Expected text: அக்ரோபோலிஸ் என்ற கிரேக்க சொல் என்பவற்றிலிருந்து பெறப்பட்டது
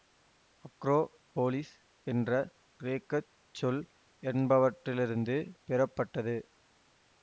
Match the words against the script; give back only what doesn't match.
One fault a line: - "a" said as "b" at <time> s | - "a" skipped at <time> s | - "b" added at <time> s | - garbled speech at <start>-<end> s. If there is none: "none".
none